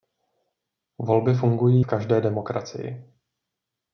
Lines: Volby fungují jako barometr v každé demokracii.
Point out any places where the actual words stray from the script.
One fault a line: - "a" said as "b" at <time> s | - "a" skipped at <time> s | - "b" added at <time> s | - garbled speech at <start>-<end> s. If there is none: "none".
- "jako barometr" skipped at 1.9 s